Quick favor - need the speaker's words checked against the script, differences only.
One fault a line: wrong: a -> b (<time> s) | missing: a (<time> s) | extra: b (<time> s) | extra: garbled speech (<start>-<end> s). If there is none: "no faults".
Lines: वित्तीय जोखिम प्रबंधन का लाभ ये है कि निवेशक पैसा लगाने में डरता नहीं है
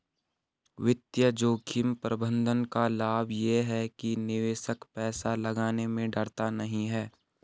no faults